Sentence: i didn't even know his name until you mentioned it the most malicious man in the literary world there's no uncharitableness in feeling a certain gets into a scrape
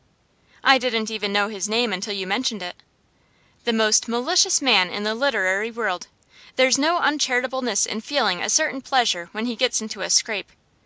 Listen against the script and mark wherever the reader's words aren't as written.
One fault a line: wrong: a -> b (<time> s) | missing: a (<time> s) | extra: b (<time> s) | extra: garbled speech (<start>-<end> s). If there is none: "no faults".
extra: pleasure when he (8.8 s)